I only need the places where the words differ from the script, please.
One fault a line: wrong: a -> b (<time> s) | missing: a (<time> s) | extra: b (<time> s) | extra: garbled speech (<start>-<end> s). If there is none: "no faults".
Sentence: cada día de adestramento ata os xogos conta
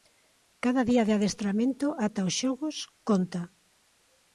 no faults